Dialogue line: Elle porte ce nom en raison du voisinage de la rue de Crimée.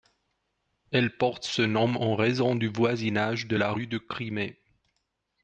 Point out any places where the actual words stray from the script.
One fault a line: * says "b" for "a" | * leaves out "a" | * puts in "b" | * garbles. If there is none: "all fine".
all fine